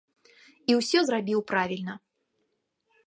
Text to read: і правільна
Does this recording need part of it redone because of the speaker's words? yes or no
yes